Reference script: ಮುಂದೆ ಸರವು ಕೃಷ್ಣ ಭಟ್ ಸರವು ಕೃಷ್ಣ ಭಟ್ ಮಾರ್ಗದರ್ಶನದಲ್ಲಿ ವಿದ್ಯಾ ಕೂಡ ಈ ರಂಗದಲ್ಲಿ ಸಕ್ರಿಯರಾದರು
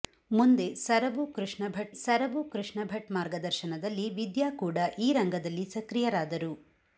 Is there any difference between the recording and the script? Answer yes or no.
no